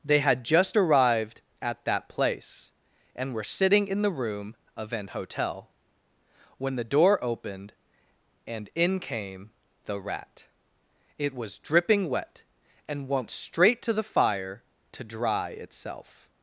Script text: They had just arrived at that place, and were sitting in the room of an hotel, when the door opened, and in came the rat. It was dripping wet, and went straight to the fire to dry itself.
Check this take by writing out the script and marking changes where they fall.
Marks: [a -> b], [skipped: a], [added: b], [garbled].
They had just arrived at that place, and were sitting in the room of an hotel, when the door opened, and in came the rat. It was dripping wet, and went straight to the fire to dry itself.